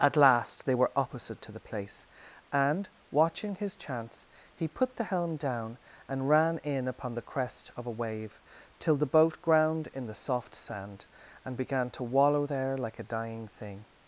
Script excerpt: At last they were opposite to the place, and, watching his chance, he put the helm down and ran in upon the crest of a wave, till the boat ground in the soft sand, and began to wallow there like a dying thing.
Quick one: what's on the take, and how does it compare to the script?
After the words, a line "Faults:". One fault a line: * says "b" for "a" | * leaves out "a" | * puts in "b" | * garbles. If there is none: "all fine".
At last they were opposite to the place, and, watching his chance, he put the helm down and ran in upon the crest of a wave, till the boat ground in the soft sand, and began to wallow there like a dying thing.
Faults:
all fine